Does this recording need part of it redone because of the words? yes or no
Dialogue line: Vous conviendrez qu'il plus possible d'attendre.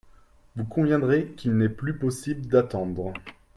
yes